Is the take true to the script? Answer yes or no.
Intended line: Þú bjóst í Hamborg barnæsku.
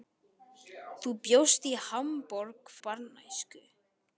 yes